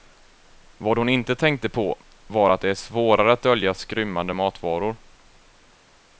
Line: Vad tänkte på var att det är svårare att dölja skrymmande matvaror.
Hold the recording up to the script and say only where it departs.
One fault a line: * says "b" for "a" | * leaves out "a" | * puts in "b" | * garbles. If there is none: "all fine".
* puts in "hon inte"